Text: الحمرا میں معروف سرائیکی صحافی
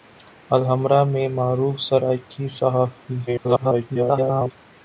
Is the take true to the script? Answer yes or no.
no